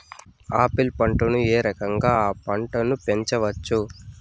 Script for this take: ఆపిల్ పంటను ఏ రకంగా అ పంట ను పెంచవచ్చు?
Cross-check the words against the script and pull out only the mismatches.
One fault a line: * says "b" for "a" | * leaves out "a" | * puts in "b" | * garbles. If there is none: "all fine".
all fine